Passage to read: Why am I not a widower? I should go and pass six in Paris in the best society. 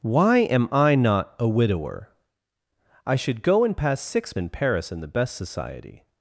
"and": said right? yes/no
yes